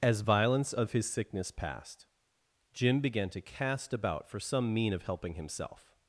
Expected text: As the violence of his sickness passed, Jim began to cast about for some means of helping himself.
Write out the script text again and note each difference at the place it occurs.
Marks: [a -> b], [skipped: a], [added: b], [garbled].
As [skipped: the] violence of his sickness passed, Jim began to cast about for some [means -> mean] of helping himself.